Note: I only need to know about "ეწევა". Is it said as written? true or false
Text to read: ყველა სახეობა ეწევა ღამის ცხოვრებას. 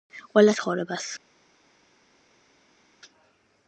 false